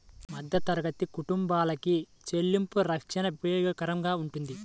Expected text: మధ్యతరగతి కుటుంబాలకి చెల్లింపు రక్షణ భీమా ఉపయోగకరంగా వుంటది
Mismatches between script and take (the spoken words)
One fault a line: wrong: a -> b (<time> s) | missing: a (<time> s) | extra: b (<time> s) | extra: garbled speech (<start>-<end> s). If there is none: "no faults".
missing: భీమా (3.3 s)